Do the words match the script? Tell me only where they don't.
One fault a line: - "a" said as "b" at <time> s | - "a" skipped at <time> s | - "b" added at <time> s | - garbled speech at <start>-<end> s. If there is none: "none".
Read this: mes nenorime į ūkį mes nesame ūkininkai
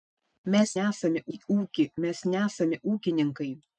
- "nenorime" said as "nesame" at 0.8 s